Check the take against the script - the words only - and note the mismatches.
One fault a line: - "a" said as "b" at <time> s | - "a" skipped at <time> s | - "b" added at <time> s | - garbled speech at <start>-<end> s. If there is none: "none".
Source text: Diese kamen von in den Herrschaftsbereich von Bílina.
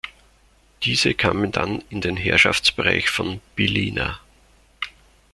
- "von" said as "dann" at 1.5 s